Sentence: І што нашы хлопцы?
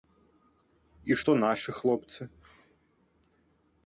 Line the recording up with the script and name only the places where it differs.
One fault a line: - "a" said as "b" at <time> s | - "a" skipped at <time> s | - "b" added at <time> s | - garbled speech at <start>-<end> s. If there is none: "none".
none